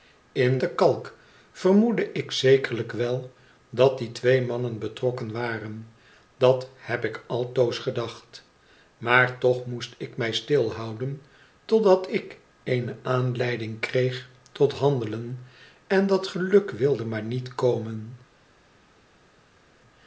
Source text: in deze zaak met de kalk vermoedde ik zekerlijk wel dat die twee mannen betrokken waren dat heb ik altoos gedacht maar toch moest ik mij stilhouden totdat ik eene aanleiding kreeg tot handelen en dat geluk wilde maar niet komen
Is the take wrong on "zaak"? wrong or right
wrong